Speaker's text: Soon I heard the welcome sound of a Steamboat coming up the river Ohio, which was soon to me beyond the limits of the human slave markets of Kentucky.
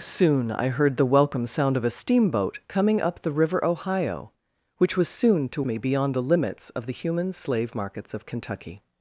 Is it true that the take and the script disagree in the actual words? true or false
false